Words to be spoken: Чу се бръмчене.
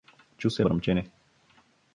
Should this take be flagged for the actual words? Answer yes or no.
no